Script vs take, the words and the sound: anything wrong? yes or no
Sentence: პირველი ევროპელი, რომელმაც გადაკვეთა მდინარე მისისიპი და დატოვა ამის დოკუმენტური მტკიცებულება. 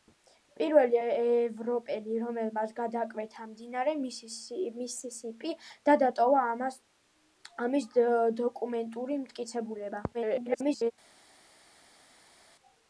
yes